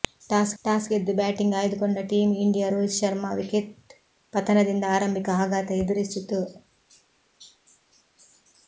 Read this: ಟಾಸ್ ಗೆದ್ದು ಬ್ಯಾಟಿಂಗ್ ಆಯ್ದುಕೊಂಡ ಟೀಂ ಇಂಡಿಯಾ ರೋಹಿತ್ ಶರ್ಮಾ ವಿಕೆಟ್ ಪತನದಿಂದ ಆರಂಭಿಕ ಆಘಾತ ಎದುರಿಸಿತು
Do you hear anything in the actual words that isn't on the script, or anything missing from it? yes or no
yes